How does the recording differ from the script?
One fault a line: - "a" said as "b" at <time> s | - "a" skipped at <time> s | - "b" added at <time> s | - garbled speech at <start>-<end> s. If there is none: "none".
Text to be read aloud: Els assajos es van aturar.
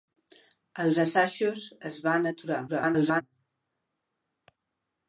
- garbled speech at 2.7-3.2 s